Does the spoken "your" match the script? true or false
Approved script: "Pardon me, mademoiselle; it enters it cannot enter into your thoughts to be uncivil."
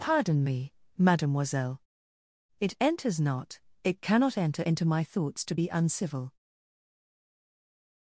false